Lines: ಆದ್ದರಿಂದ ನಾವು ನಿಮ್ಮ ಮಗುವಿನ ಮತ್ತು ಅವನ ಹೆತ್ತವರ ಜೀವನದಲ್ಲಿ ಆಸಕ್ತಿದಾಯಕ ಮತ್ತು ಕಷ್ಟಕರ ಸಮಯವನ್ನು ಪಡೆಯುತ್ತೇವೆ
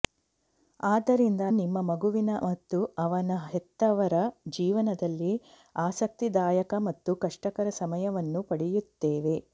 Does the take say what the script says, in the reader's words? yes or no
no